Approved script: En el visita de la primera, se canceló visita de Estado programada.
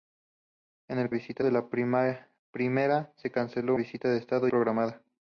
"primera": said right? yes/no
yes